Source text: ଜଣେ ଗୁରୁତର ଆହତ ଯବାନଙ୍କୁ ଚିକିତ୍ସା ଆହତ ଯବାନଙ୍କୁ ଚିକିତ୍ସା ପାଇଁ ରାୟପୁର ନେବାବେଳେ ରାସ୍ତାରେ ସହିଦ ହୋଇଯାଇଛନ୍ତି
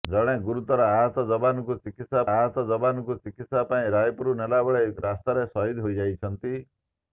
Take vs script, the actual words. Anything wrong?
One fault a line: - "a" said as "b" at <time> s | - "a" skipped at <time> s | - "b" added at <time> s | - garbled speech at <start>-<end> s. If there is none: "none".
none